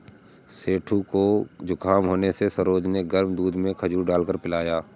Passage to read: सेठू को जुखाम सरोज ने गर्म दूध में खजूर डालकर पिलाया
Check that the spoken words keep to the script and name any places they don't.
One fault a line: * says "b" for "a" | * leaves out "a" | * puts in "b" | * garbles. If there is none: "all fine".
* puts in "होने से"